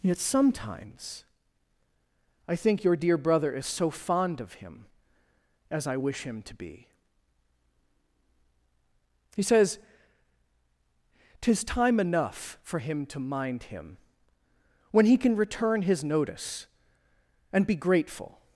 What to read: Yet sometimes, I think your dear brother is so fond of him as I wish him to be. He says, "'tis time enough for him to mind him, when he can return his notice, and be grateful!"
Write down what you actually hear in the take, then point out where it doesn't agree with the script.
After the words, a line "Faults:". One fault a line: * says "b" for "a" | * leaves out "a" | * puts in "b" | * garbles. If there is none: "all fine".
Yet sometimes, I think your dear brother is so fond of him as I wish him to be. He says, "'tis time enough for him to mind him, when he can return his notice, and be grateful!"
Faults:
all fine